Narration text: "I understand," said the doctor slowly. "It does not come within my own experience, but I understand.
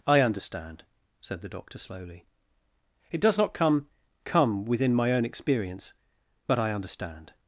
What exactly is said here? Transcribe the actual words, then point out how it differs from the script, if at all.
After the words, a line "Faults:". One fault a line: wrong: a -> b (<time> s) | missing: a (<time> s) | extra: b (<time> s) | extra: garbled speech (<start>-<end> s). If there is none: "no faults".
"I understand," said the doctor slowly. "It does not come come within my own experience, but I understand.
Faults:
extra: come (4.2 s)